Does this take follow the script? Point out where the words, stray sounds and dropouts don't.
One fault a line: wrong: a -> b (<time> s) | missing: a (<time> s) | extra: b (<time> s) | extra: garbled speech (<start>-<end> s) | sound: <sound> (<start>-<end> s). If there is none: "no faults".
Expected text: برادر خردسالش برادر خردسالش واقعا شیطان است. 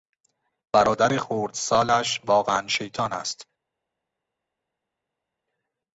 missing: برادر خردسالش (2.2 s)